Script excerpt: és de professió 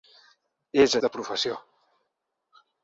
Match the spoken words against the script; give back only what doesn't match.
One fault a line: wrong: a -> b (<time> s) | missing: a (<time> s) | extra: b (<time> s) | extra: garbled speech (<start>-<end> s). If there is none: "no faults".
no faults